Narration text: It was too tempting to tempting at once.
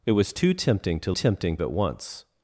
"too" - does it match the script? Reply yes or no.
yes